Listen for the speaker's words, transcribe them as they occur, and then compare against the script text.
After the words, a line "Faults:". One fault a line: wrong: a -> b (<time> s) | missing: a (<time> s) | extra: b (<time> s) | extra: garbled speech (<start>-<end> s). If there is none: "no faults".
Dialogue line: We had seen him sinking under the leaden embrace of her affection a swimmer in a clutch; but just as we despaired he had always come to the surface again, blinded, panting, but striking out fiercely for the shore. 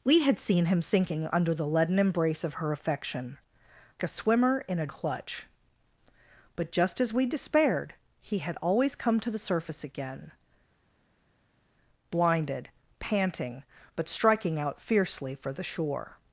We had seen him sinking under the leaden embrace of her affection a swimmer in a clutch; but just as we despaired he had always come to the surface again, blinded, panting, but striking out fiercely for the shore.
Faults:
no faults